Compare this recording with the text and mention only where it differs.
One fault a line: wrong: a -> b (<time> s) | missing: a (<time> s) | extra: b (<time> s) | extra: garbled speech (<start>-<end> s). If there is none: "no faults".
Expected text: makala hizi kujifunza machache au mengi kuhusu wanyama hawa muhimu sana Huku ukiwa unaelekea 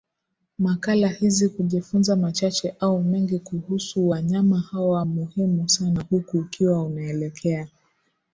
no faults